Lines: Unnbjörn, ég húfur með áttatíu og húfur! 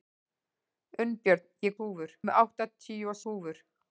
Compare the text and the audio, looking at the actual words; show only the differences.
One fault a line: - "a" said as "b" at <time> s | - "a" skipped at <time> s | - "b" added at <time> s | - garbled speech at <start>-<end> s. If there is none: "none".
none